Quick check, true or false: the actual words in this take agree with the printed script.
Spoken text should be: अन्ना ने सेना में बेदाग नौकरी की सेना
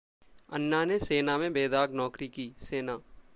true